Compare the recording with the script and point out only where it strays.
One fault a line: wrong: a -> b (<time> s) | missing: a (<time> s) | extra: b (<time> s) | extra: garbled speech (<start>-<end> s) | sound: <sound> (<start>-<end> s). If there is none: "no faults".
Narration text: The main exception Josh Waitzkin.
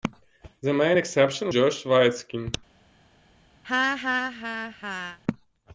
sound: laugh (3.6-5.2 s)